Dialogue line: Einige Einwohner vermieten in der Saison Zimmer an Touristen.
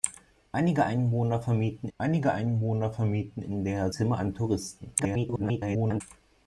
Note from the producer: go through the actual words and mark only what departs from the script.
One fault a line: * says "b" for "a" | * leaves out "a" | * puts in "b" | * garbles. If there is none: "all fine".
* puts in "einige Einwohner vermieten"
* leaves out "Saison"
* garbles